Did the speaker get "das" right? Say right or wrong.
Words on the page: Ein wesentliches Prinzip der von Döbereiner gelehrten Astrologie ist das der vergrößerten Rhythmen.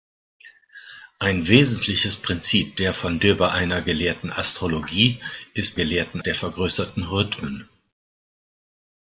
wrong